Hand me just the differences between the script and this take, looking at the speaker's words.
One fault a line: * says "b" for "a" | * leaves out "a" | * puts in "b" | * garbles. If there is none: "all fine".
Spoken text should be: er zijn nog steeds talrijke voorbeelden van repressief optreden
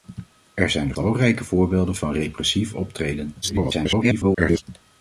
* leaves out "steeds"
* garbles